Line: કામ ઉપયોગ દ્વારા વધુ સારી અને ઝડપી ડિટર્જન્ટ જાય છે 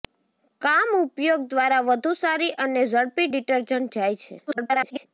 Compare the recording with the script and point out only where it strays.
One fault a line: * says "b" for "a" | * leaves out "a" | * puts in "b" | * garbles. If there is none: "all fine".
* garbles